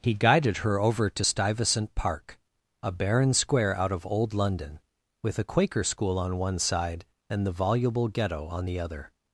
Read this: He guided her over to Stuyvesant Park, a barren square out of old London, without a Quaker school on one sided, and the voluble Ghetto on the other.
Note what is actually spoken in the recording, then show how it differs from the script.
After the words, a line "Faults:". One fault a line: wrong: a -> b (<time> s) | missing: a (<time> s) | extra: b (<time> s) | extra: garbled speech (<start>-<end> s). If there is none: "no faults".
He guided her over to Stuyvesant Park, a barren square out of old London, with a Quaker school on one side, and the voluble Ghetto on the other.
Faults:
wrong: without -> with (5.2 s)
wrong: sided -> side (6.6 s)